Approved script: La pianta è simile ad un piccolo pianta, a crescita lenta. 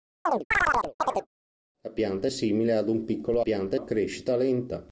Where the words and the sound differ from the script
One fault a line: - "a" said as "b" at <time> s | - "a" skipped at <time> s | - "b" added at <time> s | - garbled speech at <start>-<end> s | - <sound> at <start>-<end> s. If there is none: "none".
- chirp at 0.3-1.3 s